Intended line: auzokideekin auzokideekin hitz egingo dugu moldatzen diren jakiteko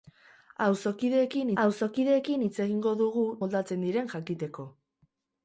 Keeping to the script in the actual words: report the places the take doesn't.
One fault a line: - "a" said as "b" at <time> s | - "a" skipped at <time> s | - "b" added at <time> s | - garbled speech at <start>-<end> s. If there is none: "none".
none